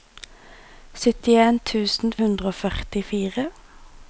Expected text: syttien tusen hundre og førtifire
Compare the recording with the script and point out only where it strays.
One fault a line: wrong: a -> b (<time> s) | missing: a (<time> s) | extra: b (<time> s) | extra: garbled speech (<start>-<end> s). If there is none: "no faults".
no faults